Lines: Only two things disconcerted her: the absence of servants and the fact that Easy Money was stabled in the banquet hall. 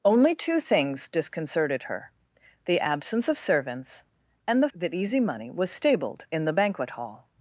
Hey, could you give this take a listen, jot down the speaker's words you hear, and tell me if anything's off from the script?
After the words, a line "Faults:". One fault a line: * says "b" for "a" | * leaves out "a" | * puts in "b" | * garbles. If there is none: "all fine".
Only two things disconcerted her: the absence of servants and the that Easy Money was stabled in the banquet hall.
Faults:
* leaves out "fact"